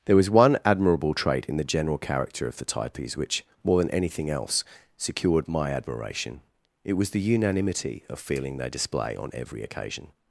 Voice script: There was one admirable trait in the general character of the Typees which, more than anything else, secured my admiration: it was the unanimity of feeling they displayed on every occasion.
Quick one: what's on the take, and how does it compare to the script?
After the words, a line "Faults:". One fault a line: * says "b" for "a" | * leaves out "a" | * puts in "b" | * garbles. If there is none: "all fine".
There was one admirable trait in the general character of the Typees which, more than anything else, secured my admiration: it was the unanimity of feeling they display on every occasion.
Faults:
* says "display" for "displayed"